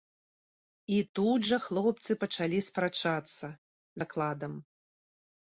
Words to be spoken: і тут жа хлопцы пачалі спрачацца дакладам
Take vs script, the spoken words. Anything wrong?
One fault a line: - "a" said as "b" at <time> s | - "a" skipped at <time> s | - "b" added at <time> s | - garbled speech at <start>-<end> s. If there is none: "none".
none